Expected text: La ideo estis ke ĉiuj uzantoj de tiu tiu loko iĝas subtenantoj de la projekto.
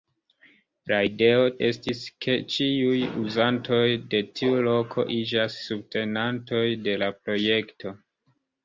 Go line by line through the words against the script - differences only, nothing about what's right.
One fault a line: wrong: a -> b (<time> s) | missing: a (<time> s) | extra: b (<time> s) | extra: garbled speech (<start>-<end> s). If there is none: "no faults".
missing: tiu (4.7 s)